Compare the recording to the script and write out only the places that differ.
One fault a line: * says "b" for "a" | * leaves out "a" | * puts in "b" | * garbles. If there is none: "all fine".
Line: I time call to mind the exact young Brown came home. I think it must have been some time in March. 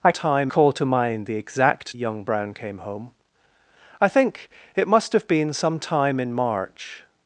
all fine